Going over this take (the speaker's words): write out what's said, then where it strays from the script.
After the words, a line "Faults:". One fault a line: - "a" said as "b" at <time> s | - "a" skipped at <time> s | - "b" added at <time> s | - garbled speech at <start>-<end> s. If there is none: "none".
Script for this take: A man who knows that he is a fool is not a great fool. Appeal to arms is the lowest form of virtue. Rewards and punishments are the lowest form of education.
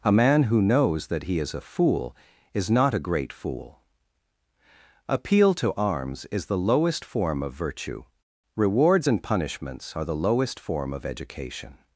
A man who knows that he is a fool is not a great fool. Appeal to arms is the lowest form of virtue. Rewards and punishments are the lowest form of education.
Faults:
none